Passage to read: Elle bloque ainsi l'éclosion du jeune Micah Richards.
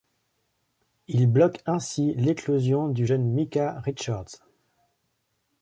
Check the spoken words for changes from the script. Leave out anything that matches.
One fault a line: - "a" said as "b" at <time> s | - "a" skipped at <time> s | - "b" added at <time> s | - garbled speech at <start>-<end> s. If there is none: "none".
- "Elle" said as "Il" at 1.1 s